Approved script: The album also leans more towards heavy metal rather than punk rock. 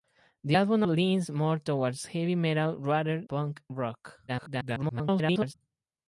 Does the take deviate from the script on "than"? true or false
true